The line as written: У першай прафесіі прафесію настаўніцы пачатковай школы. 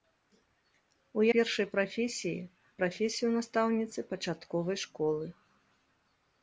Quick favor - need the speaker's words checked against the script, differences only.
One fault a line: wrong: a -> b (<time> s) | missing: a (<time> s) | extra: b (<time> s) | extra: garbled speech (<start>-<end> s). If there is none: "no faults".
no faults